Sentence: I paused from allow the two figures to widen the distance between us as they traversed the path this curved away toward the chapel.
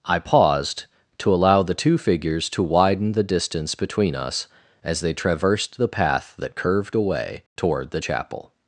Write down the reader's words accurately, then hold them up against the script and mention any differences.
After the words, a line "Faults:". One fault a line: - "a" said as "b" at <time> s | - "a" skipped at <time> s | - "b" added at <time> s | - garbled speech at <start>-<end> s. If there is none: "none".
I paused to allow the two figures to widen the distance between us as they traversed the path that curved away toward the chapel.
Faults:
- "from" said as "to" at 1.2 s
- "this" said as "that" at 6.4 s